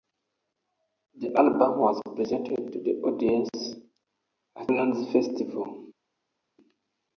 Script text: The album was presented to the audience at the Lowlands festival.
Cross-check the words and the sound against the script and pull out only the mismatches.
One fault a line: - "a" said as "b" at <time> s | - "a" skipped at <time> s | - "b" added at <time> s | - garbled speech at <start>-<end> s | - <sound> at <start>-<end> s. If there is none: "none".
- "the" skipped at 4.7 s